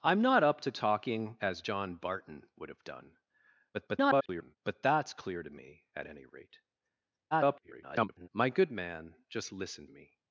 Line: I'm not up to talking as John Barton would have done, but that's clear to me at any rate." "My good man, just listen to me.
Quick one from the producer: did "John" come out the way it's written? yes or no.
yes